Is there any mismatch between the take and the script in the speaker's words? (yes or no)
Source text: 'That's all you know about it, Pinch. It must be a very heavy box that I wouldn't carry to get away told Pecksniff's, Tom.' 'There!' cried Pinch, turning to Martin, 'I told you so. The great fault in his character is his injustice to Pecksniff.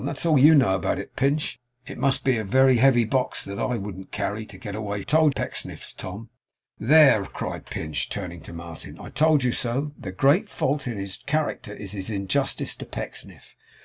no